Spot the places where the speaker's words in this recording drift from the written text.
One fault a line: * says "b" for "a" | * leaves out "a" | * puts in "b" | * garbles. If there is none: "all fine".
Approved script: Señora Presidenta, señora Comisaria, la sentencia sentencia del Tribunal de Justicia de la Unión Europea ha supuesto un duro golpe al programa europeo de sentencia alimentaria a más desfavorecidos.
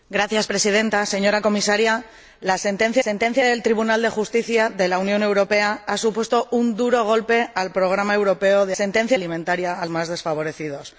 all fine